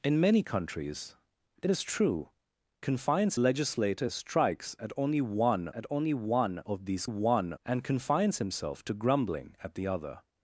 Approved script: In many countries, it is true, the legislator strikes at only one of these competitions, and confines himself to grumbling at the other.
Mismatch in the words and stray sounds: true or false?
true